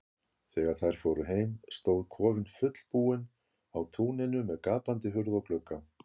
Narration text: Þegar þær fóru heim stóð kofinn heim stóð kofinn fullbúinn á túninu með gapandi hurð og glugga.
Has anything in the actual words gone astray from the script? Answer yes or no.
yes